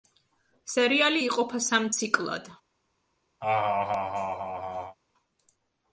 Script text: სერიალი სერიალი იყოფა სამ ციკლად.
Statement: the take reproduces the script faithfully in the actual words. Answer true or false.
false